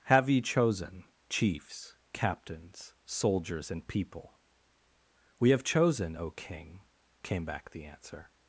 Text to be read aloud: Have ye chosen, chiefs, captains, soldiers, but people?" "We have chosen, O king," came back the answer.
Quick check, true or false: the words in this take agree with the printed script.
false